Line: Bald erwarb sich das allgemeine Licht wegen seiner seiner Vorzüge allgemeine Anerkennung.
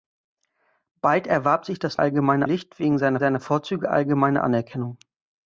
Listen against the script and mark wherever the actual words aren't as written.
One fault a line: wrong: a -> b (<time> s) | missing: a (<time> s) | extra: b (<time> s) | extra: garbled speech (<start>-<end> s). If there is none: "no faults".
no faults